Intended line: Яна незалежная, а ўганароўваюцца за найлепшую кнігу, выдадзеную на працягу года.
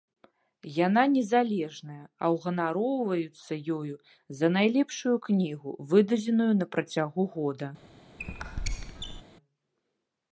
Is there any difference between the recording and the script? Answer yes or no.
yes